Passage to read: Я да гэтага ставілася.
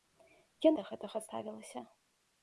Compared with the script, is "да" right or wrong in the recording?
right